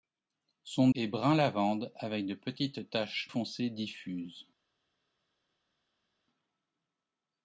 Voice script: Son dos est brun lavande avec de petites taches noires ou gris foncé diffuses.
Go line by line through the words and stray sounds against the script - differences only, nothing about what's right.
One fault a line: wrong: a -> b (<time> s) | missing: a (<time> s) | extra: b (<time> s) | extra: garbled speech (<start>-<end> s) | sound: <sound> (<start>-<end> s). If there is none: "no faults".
missing: dos (0.9 s)
missing: noires ou gris (3.3 s)